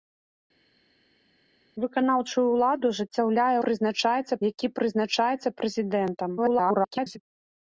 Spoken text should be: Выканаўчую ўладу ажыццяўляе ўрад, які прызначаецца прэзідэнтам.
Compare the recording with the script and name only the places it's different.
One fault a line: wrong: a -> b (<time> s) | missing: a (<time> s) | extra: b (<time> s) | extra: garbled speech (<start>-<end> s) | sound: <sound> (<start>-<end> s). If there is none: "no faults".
wrong: ўрад -> прызначаецца (3.7 s)
extra: garbled speech (6.4-7.2 s)